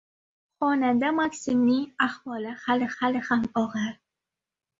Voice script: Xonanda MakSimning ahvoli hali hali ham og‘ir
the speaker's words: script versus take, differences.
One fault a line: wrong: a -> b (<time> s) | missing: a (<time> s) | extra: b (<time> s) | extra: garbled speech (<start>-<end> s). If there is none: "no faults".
no faults